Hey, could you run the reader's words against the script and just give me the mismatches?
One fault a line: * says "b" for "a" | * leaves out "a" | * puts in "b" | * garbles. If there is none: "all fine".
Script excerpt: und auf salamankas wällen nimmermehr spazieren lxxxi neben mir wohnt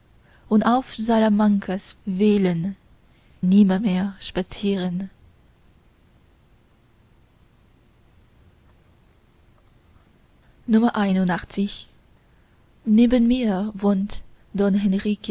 all fine